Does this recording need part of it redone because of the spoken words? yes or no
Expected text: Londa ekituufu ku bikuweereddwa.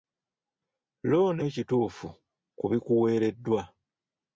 no